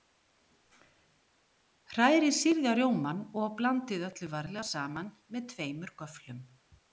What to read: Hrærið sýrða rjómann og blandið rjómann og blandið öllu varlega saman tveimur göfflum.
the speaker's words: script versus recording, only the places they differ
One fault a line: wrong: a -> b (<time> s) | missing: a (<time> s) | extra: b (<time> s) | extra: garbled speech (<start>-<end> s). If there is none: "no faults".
missing: rjómann og blandið (4.1 s)
extra: með (5.4 s)